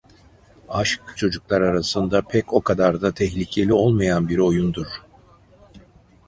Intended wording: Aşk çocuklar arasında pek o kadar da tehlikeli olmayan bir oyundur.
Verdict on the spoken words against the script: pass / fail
pass